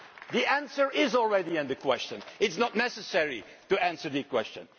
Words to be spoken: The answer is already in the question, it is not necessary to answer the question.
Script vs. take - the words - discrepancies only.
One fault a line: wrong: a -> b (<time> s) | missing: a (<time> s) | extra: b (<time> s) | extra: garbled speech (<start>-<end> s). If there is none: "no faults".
no faults